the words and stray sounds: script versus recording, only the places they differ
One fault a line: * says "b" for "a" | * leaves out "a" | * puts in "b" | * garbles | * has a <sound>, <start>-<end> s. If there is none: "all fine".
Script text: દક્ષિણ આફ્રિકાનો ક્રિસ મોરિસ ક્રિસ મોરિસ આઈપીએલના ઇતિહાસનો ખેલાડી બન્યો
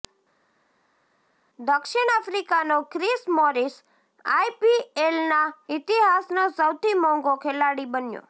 * says "આઈપીએલના ઇતિહાસનો સૌથી મોંઘો" for "ક્રિસ મોરિસ આઈપીએલના ઇતિહાસનો"